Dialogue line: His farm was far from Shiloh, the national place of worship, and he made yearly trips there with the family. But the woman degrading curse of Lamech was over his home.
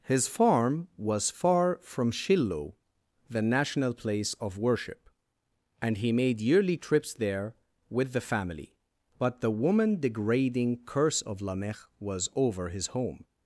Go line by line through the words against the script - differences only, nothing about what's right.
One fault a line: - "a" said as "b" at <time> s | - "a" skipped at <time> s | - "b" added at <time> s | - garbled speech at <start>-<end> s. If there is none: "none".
none